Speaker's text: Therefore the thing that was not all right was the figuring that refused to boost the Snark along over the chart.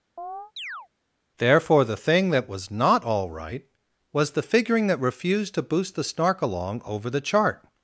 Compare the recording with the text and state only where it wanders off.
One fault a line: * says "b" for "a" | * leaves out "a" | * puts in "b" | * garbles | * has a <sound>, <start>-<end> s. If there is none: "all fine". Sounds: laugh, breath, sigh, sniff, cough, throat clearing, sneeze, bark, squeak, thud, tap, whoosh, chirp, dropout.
* has a chirp, 0.2-0.9 s